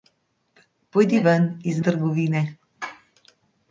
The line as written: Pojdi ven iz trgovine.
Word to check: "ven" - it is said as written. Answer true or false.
true